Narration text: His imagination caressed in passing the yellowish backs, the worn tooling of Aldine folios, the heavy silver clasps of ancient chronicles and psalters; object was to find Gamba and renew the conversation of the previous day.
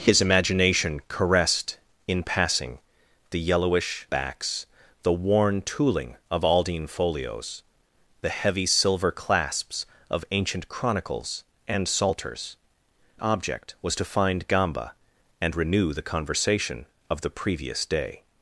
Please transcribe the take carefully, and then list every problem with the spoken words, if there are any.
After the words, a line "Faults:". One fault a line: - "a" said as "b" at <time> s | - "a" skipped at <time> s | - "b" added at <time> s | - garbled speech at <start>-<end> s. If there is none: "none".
His imagination caressed in passing the yellowish backs, the worn tooling of Aldine folios, the heavy silver clasps of ancient chronicles and psalters; object was to find Gamba and renew the conversation of the previous day.
Faults:
none